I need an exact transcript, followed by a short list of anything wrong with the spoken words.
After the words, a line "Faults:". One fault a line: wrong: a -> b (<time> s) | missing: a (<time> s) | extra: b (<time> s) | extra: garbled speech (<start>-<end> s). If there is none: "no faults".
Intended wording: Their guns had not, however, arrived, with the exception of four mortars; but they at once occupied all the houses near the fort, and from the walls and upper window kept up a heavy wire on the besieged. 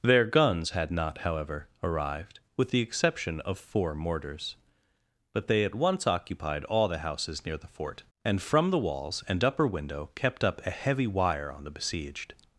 Their guns had not, however, arrived, with the exception of four mortars; but they at once occupied all the houses near the fort, and from the walls and upper window kept up a heavy wire on the besieged.
Faults:
no faults